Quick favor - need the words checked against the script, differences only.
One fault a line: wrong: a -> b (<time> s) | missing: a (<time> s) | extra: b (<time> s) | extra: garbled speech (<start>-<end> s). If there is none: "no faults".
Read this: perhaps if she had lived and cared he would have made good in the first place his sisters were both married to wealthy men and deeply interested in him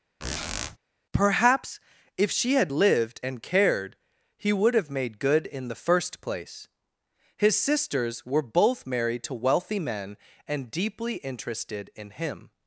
no faults